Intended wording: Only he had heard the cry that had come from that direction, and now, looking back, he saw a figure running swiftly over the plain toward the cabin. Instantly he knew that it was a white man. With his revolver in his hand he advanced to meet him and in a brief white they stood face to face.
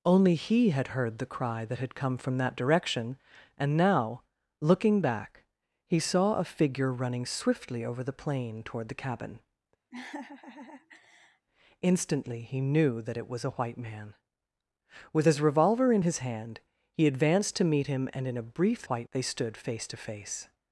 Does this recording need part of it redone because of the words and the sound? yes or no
yes